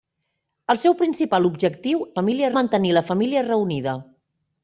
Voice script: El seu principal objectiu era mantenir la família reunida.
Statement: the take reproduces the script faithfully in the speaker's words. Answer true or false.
false